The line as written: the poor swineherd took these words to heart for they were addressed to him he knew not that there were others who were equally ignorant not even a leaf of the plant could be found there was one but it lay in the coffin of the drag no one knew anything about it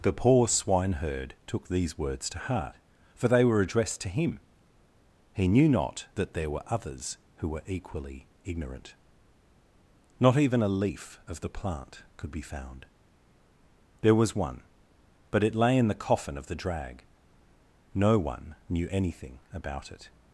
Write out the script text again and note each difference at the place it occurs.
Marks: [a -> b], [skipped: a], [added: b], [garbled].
the poor swineherd took these words to heart for they were addressed to him he knew not that there were others who were equally ignorant not even a leaf of the plant could be found there was one but it lay in the coffin of the drag no one knew anything about it